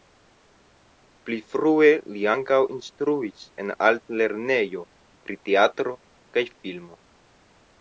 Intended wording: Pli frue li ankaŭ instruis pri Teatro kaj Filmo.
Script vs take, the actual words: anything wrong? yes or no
yes